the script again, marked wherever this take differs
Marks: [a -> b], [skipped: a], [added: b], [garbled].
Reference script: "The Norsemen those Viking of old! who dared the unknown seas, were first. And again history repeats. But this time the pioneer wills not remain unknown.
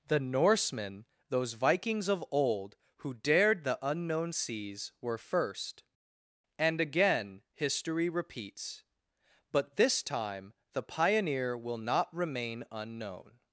"The Norsemen those [Viking -> Vikings] of old! who dared the unknown seas, were first. And again history repeats. But this time the pioneer [wills -> will] not remain unknown.